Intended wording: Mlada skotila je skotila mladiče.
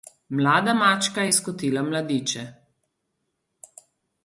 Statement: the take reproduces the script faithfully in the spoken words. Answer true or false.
false